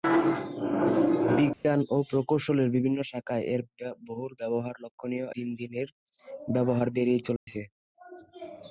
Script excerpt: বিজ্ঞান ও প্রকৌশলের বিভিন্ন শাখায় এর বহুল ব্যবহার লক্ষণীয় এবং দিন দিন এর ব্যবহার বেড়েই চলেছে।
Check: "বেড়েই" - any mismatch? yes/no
no